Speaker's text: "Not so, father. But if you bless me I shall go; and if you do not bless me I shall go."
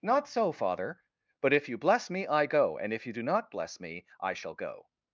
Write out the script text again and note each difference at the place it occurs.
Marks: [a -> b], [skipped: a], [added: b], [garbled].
"Not so, father. But if you bless me I [skipped: shall] go; and if you do not bless me I shall go."